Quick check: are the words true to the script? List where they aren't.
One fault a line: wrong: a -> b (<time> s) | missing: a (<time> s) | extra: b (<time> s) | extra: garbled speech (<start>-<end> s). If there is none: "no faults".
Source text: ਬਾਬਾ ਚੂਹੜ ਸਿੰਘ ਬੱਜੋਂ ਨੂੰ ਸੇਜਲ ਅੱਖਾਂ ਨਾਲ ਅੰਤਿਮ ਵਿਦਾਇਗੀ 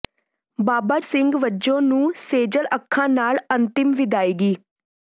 missing: ਚੂਹੜ (1.0 s)